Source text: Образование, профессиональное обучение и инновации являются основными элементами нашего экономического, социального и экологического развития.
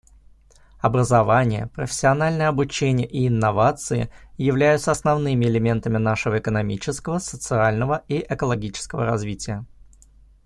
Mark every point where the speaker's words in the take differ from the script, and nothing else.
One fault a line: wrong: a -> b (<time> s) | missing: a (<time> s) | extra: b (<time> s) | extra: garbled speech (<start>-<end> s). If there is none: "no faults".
no faults